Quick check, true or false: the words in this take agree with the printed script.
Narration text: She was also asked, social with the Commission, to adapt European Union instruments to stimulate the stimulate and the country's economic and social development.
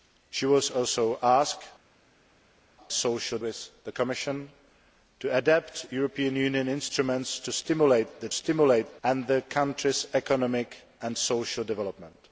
true